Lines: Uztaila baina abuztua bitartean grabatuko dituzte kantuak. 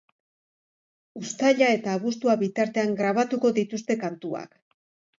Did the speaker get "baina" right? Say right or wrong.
wrong